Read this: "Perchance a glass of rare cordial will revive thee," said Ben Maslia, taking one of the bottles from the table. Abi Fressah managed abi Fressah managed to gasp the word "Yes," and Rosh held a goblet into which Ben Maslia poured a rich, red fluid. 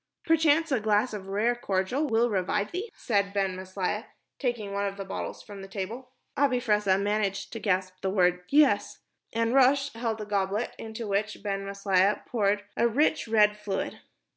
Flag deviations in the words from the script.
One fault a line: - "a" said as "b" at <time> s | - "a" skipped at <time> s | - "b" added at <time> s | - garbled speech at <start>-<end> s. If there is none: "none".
- "abi Fressah managed" skipped at 7.5 s